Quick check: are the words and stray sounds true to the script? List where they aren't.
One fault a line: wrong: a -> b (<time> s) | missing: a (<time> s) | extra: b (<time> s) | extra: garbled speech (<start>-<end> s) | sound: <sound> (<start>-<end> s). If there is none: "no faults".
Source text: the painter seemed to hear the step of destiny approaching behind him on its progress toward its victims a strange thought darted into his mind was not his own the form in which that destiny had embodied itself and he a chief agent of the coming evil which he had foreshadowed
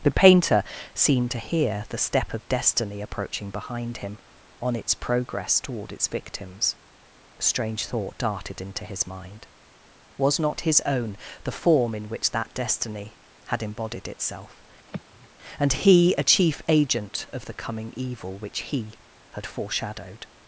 sound: sigh (14.9-15.3 s)